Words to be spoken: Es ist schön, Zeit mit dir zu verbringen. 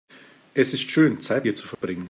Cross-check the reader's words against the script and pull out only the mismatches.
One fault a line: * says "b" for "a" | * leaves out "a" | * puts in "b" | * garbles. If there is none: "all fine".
* leaves out "mit"